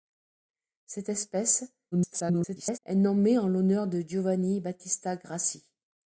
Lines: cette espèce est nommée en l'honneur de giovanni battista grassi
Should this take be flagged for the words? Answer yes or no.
yes